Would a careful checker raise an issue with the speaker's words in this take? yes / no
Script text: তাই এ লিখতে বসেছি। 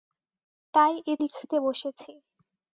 no